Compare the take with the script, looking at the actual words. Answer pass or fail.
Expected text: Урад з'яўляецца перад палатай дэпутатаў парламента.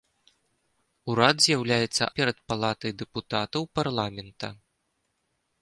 pass